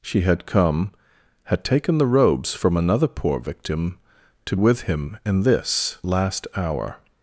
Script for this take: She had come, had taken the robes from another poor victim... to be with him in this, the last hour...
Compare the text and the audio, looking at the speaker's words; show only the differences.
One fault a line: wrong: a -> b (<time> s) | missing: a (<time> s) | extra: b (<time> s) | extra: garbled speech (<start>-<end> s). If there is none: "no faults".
missing: be (4.5 s)
missing: the (6.0 s)